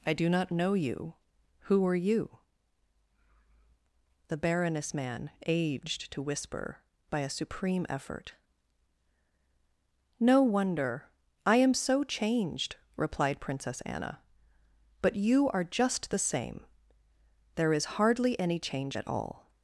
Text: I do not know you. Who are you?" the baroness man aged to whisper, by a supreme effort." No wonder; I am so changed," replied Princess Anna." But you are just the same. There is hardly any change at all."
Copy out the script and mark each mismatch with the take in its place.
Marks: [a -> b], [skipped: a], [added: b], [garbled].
I do not know you. Who are you?" the baroness man aged to whisper, by a supreme effort." No wonder; I am so changed," replied Princess Anna." But you are just the same. There is hardly any change at all."